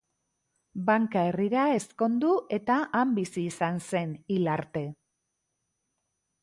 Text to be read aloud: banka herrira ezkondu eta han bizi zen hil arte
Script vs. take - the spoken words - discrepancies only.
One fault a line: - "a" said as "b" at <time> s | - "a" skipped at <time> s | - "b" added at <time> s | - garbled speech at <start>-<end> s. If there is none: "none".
- "izan" added at 3.5 s